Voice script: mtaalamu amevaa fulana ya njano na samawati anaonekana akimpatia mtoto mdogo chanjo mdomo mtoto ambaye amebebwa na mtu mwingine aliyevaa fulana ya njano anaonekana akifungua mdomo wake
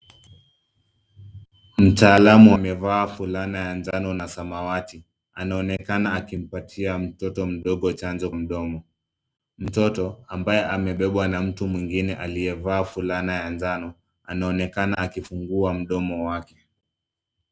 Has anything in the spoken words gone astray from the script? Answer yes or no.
no